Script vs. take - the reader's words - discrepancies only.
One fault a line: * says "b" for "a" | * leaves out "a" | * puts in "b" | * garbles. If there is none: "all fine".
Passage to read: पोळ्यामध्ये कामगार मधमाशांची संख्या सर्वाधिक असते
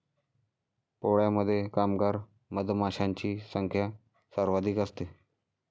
all fine